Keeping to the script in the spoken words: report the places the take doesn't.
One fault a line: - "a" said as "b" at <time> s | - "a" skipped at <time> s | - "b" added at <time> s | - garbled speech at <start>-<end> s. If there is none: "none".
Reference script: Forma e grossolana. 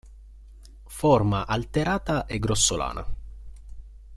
- "alterata" added at 1.4 s